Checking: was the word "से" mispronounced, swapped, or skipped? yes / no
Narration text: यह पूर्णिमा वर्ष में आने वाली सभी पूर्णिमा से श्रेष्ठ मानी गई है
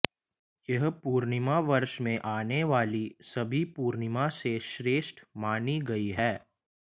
no